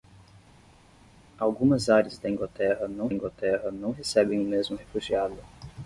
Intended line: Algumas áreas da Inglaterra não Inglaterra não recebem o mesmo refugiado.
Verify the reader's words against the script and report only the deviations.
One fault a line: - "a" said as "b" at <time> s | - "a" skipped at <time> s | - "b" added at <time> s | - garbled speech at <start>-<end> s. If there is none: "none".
none